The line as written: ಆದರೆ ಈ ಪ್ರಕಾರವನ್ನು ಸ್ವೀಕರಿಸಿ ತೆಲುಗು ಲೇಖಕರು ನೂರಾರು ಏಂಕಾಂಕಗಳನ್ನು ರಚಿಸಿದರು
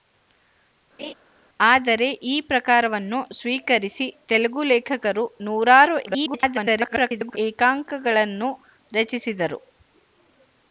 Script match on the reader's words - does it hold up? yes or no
no